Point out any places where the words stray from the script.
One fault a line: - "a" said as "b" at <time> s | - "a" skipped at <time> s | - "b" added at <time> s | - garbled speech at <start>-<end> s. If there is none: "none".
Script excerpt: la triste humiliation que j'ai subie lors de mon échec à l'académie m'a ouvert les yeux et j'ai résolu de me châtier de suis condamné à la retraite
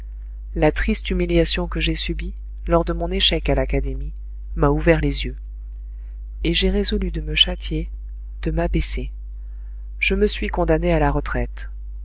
- "m'abaisser je me" added at 8.5 s